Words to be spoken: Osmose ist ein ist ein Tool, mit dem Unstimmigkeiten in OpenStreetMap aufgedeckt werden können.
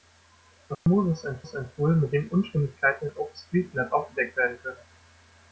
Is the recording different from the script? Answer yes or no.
no